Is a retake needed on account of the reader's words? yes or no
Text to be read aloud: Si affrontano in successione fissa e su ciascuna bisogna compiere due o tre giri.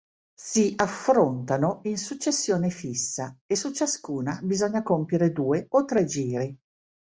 no